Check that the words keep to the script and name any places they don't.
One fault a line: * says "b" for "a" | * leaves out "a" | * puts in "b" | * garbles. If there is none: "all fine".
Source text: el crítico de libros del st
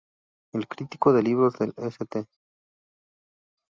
all fine